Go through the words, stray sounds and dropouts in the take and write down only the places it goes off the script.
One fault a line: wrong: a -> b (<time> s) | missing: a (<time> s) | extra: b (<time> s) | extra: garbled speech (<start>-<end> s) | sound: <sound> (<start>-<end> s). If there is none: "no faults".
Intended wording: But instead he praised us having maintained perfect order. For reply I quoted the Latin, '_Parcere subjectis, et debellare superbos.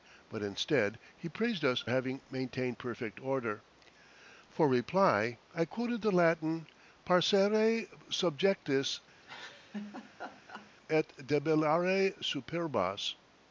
sound: laugh (9.2-10.7 s)